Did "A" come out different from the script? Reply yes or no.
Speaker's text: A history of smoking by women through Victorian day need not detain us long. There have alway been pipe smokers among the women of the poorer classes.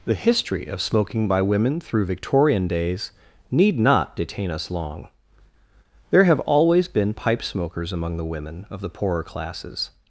yes